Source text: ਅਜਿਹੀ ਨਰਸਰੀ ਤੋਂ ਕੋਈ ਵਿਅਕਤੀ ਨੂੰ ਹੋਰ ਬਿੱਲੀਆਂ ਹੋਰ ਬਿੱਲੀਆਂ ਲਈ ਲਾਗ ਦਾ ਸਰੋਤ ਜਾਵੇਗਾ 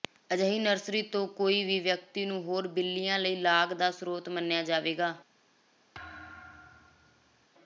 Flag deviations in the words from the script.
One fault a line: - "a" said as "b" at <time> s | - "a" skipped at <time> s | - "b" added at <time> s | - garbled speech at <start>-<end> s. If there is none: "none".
- "ਵੀ" added at 1.6 s
- "ਹੋਰ ਬਿੱਲੀਆਂ" skipped at 3.2 s
- "ਮੰਨਿਆ" added at 4.3 s